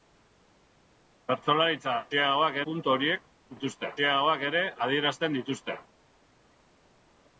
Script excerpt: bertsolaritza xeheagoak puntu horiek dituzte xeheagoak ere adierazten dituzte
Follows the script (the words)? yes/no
yes